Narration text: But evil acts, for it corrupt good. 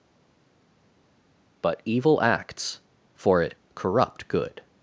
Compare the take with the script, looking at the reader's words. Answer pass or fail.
pass